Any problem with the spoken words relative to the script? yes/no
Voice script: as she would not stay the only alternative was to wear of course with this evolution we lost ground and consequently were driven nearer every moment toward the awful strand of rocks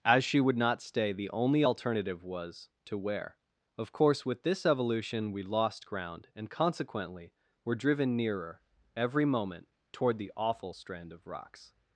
no